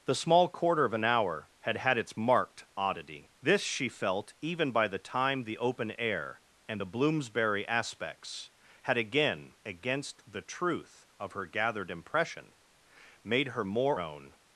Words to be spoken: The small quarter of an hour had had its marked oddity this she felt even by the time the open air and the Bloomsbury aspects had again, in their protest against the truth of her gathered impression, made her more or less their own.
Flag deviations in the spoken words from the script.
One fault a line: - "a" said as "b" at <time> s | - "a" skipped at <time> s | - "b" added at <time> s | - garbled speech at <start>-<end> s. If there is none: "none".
- "in their protest" skipped at 9.5 s
- "or less their" skipped at 14.0 s